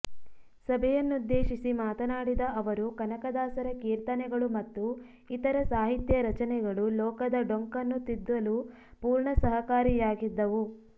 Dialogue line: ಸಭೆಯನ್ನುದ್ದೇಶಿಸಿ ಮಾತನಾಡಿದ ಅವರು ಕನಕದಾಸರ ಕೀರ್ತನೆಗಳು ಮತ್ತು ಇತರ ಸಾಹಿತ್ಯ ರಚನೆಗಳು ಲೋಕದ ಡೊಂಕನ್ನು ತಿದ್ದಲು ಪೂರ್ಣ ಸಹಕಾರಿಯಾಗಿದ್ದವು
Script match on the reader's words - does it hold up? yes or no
yes